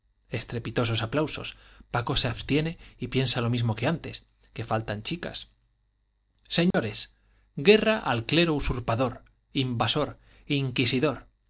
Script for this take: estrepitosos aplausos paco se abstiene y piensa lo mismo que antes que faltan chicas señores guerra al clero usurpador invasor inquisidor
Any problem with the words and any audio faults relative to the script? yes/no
yes